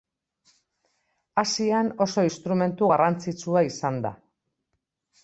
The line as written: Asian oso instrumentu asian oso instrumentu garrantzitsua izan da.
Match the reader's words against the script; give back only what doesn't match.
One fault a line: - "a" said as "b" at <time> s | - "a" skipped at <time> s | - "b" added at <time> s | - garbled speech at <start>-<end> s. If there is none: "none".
- "asian oso instrumentu" skipped at 2.9 s